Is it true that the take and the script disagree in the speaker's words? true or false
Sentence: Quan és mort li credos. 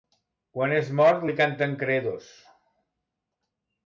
true